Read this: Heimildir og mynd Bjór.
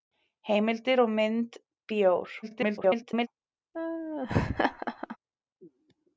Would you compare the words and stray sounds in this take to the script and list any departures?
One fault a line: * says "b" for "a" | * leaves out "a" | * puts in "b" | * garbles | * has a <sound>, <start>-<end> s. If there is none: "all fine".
* garbles
* has a laugh, 3.7-5.2 s